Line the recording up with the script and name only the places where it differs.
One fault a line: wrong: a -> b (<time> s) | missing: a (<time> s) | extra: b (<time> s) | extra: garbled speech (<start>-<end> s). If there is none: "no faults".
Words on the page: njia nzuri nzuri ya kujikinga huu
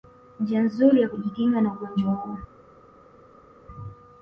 missing: nzuri (1.0 s)
extra: na ugonjwa (1.6 s)